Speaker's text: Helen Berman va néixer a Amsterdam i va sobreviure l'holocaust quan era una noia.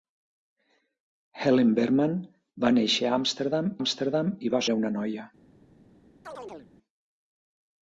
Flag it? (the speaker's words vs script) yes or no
yes